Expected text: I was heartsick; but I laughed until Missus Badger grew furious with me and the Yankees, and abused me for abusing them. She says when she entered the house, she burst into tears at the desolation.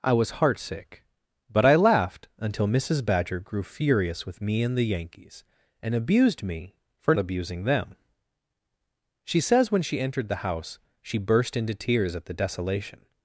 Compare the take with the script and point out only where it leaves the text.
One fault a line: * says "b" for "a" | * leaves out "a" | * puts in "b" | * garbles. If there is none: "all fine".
all fine